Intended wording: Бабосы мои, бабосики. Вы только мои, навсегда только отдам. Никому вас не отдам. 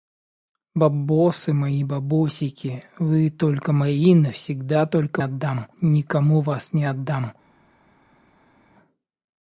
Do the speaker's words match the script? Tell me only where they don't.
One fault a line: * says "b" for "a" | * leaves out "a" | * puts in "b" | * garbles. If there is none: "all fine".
all fine